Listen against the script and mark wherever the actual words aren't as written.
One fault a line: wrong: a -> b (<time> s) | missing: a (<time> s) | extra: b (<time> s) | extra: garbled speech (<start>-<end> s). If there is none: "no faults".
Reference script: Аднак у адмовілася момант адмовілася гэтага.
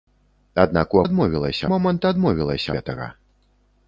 no faults